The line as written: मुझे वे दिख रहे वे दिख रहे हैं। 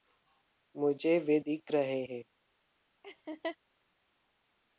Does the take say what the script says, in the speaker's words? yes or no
no